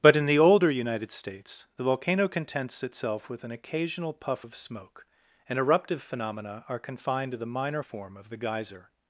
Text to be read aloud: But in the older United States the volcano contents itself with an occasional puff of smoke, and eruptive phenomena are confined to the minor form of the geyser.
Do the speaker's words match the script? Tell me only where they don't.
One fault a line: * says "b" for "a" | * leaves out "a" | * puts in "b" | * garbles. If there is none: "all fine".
all fine